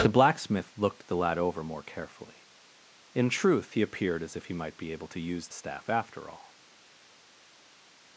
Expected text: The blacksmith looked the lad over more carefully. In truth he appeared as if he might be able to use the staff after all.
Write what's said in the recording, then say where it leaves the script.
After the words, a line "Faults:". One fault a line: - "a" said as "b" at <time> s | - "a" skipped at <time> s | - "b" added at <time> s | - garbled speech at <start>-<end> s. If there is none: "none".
The blacksmith looked the lad over more carefully. In truth he appeared as if he might be able to use staff after all.
Faults:
- "the" skipped at 5.5 s